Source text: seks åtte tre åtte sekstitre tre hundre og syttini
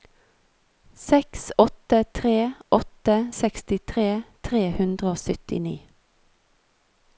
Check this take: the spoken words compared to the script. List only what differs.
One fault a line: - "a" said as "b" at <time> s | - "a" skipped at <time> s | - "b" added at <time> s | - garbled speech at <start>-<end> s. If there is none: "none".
none